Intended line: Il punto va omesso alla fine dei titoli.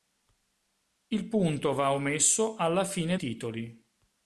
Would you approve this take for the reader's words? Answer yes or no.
no